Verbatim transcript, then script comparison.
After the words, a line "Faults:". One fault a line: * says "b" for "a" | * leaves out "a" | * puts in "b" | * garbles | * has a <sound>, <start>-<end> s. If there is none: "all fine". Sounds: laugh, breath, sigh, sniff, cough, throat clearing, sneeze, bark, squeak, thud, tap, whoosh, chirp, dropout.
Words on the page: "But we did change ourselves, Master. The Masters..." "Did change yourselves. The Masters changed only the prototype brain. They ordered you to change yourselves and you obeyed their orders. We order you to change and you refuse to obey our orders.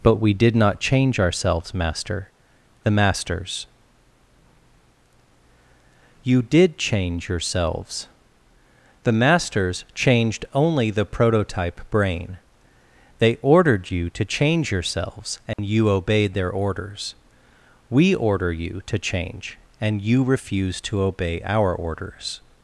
"But we did not change ourselves, Master. The Masters..." "You did change yourselves. The Masters changed only the prototype brain. They ordered you to change yourselves and you obeyed their orders. We order you to change and you refuse to obey our orders.
Faults:
* puts in "not"
* puts in "You"
* has a dropout, 15.5-15.6 s